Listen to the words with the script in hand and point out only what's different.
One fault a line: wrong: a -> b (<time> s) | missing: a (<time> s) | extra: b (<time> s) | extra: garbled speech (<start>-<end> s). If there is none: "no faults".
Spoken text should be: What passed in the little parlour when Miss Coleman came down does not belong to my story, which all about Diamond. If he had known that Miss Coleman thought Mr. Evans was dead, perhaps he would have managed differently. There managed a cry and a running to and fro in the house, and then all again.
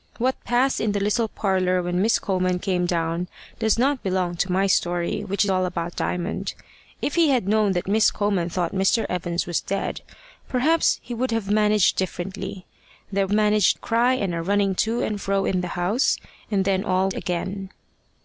no faults